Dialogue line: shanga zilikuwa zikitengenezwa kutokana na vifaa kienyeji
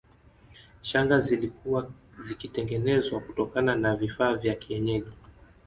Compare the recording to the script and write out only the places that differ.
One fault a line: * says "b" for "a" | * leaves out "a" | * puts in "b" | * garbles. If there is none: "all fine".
* puts in "vya"